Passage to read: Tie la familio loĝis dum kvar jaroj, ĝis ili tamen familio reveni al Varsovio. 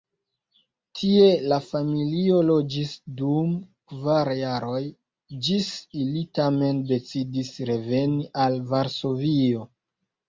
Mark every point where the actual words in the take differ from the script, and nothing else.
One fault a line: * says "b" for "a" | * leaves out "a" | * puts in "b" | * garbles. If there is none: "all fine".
* says "decidis" for "familio"